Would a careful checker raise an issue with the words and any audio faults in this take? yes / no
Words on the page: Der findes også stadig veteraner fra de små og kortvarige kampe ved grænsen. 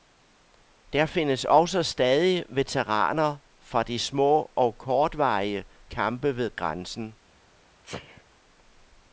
yes